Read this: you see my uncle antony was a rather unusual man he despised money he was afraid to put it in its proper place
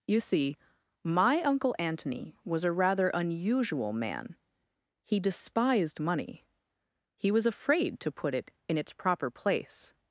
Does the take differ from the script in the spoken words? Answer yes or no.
no